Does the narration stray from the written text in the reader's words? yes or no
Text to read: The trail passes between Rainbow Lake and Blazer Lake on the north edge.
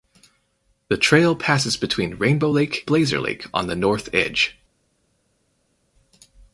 yes